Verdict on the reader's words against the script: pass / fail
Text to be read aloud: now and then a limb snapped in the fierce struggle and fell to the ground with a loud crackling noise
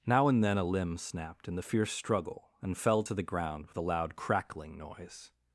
pass